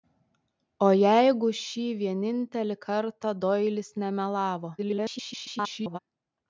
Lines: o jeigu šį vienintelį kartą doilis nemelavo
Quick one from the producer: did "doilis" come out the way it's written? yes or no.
yes